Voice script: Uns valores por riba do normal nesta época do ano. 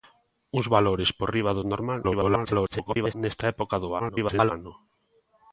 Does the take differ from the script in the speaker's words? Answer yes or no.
yes